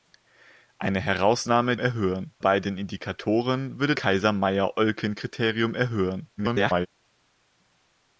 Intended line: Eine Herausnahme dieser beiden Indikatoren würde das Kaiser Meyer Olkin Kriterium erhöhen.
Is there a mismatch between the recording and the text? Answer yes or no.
yes